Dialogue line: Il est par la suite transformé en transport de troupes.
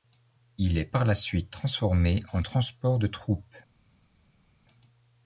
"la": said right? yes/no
yes